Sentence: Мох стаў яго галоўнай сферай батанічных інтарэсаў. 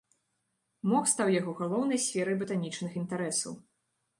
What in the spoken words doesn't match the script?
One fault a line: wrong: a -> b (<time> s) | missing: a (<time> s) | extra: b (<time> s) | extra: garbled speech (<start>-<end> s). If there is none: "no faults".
no faults